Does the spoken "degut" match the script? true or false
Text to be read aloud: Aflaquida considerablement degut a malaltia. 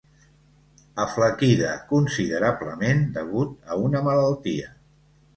true